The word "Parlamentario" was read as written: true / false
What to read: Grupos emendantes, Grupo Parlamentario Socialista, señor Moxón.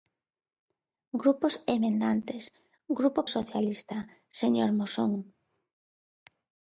false